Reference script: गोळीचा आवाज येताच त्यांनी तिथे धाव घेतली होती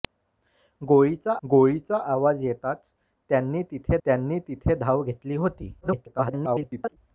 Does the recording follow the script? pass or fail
fail